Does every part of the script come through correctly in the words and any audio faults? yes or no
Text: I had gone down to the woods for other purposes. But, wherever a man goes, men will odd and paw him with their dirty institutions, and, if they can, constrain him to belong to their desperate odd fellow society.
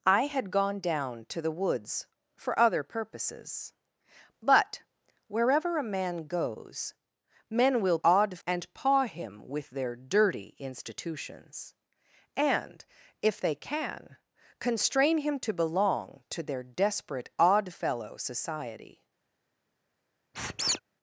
no